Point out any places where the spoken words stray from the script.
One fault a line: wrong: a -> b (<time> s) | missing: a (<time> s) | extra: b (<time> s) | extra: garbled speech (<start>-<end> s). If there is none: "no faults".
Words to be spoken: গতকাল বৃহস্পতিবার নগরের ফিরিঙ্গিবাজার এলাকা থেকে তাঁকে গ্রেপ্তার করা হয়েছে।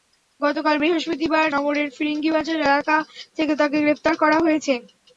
no faults